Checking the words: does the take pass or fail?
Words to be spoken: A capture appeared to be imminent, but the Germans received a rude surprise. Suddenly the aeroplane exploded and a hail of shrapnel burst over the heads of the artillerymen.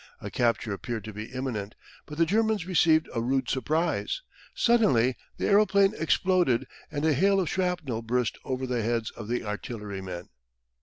pass